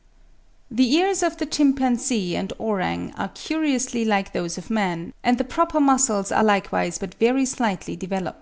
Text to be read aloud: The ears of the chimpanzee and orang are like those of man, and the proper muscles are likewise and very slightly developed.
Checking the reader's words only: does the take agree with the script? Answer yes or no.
no